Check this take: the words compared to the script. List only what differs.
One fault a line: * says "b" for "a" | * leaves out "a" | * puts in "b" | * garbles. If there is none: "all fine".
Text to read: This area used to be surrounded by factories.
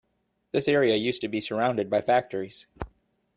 all fine